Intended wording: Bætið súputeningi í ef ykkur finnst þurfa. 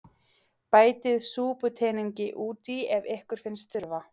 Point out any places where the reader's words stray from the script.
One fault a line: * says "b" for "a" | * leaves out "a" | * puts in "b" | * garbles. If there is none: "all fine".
* puts in "út"